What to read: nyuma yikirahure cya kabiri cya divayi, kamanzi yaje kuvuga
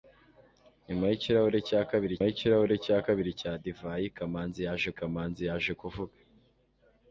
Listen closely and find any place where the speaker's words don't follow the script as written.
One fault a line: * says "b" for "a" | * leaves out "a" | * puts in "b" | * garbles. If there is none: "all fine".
* puts in "yikirahure"
* puts in "kabiri cya"
* puts in "kamanzi yaje"